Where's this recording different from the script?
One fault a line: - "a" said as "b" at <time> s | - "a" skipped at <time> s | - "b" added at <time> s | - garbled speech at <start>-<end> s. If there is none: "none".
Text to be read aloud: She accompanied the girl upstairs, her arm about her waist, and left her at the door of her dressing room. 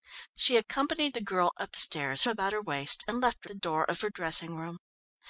- "her arm" skipped at 2.2 s
- "at" skipped at 3.5 s